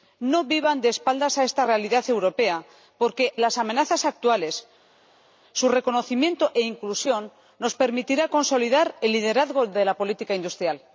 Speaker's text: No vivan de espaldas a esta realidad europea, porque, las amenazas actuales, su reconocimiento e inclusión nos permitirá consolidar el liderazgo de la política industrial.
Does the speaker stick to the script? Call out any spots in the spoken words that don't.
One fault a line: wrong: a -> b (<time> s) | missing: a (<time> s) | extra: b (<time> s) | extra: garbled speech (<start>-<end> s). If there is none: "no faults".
no faults